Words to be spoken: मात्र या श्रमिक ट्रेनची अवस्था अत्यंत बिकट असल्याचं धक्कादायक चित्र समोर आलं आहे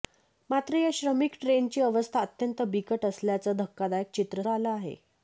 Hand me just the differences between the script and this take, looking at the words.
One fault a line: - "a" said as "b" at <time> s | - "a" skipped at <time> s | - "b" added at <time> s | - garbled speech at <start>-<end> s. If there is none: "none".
- "समोर" skipped at 4.4 s